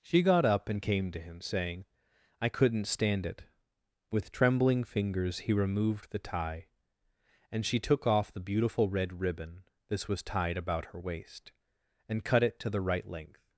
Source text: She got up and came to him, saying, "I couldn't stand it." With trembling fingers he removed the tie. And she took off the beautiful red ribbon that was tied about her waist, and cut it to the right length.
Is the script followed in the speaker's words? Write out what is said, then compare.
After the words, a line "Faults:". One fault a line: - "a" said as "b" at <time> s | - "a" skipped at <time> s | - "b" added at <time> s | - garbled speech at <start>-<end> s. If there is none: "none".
She got up and came to him, saying, "I couldn't stand it." With trembling fingers he removed the tie. And she took off the beautiful red ribbon this was tied about her waist, and cut it to the right length.
Faults:
- "that" said as "this" at 9.9 s